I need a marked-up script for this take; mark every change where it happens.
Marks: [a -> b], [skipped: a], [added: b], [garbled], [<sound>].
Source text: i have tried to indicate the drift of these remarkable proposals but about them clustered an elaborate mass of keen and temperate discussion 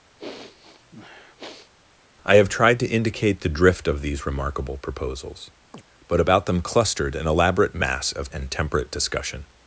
[sniff] i have tried to indicate the drift of these remarkable proposals [chirp] but about them clustered an elaborate mass of [skipped: keen] and temperate discussion